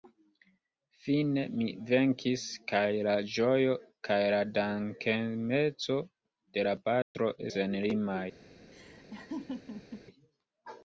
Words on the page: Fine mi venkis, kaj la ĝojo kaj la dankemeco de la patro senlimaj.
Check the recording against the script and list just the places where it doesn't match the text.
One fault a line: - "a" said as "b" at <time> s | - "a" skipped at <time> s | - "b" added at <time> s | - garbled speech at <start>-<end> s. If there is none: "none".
none